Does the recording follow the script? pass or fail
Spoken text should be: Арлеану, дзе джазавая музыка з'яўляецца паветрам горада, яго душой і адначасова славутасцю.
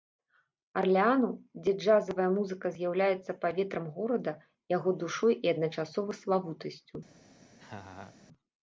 pass